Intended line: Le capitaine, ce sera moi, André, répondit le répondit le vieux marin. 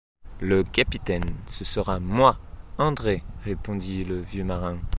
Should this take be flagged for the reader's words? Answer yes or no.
yes